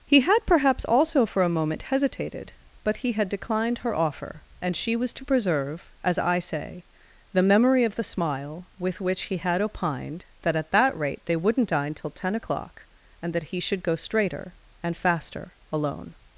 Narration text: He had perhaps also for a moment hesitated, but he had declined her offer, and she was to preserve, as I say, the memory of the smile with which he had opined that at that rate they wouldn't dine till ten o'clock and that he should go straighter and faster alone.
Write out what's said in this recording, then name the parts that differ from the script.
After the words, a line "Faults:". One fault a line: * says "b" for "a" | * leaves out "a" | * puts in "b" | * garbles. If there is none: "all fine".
He had perhaps also for a moment hesitated, but he had declined her offer, and she was to preserve, as I say, the memory of the smile with which he had opined that at that rate they wouldn't dine till ten o'clock and that he should go straighter and faster alone.
Faults:
all fine